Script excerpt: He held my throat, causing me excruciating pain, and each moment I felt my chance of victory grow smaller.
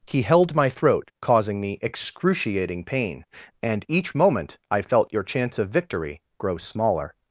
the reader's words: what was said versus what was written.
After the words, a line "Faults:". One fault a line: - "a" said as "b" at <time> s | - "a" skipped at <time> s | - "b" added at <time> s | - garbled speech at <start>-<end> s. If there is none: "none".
He held my throat, causing me excruciating pain, and each moment I felt your chance of victory grow smaller.
Faults:
- "my" said as "your" at 5.1 s